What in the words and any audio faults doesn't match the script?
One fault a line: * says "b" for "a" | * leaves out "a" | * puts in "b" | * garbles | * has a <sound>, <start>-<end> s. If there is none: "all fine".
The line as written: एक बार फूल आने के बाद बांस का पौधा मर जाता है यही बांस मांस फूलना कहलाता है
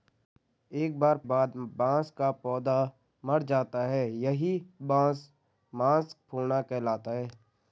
* leaves out "फूल आने के"